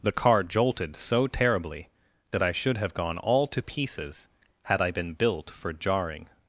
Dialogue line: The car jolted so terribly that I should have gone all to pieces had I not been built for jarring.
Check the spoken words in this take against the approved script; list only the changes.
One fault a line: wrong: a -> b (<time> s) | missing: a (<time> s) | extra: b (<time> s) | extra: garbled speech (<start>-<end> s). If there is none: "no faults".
missing: not (4.9 s)